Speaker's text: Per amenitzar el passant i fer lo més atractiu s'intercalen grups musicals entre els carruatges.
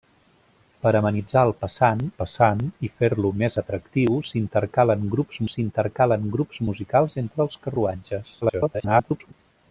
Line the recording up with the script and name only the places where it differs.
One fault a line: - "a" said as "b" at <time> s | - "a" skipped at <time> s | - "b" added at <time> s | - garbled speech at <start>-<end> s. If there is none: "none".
- "passant" added at 2.2 s
- "s'intercalen grups" added at 5.5 s
- garbled speech at 8.4-9.3 s